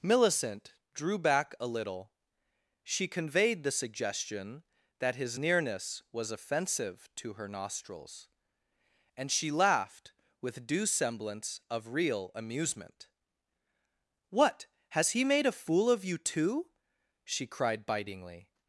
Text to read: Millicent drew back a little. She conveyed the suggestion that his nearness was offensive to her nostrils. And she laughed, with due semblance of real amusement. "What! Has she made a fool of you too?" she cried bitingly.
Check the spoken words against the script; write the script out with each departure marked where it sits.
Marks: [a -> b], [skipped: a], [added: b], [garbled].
Millicent drew back a little. She conveyed the suggestion that his nearness was offensive to her nostrils. And she laughed, with due semblance of real amusement. "What! Has [she -> he] made a fool of you too?" she cried bitingly.